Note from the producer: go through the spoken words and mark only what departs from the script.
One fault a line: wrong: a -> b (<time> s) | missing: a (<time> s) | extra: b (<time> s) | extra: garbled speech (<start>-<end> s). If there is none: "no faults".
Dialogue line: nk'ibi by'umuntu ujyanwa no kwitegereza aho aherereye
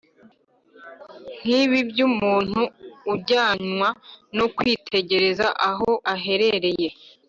no faults